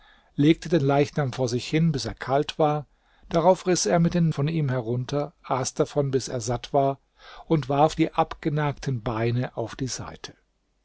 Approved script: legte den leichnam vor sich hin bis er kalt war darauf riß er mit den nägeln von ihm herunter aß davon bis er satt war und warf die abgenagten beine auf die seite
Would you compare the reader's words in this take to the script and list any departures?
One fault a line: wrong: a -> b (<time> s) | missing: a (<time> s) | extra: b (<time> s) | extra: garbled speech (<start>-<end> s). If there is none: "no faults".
missing: nägeln (4.3 s)